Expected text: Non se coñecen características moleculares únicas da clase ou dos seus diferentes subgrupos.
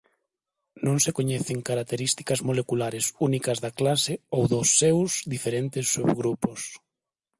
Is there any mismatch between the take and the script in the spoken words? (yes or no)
no